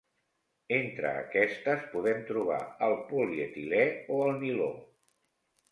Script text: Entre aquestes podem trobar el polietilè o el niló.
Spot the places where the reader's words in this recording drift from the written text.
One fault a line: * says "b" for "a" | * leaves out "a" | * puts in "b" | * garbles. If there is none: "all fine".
all fine